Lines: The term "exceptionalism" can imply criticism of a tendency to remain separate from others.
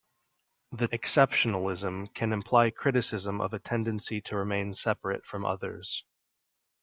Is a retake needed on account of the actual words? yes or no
yes